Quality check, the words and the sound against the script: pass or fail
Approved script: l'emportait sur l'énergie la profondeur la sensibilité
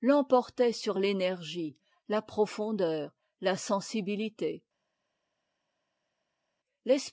pass